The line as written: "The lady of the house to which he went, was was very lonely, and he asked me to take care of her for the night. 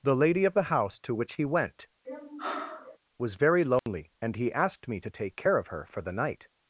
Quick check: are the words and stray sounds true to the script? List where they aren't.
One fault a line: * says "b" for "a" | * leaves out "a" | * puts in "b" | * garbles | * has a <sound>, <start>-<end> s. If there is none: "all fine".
* has a sigh, 2.0-3.0 s
* leaves out "was"
* has a dropout, 3.8-3.9 s